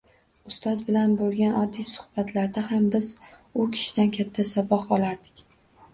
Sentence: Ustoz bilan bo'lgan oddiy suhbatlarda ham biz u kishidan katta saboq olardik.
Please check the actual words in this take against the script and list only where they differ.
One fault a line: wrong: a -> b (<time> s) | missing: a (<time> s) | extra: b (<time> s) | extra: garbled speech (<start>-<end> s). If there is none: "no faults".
no faults